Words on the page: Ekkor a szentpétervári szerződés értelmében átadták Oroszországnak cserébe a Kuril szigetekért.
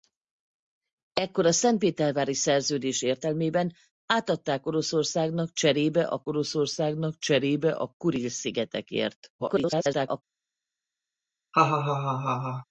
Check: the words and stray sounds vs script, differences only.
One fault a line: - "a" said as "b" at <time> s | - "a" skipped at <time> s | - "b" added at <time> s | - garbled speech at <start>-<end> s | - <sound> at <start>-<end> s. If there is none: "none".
- "Oroszországnak cserébe a" added at 6.3 s
- garbled speech at 9.4-10.2 s
- laugh at 11.5-12.7 s